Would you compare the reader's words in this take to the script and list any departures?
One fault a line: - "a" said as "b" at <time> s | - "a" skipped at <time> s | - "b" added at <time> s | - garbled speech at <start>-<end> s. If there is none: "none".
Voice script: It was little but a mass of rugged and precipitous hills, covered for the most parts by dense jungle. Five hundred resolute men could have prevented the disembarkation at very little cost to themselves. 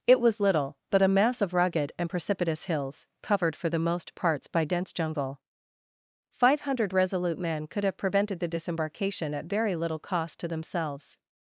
none